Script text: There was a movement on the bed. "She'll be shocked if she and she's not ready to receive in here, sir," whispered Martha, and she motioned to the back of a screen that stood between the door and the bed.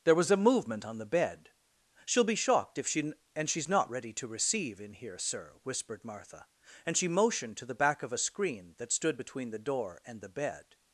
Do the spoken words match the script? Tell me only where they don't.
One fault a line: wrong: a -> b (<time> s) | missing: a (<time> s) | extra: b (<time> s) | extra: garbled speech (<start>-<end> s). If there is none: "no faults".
no faults